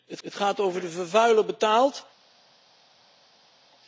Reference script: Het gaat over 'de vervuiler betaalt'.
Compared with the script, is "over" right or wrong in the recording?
right